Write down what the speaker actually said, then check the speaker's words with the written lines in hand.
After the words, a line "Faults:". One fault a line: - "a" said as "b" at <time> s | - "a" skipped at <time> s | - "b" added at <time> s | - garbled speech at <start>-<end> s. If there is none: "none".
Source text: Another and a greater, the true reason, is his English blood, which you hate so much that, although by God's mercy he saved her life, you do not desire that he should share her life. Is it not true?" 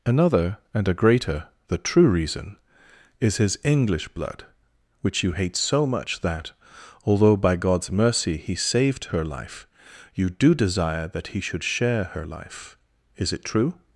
Another and a greater, the true reason, is his English blood, which you hate so much that, although by God's mercy he saved her life, you do desire that he should share her life. Is it true?"
Faults:
- "not" skipped at 10.5 s
- "not" skipped at 13.4 s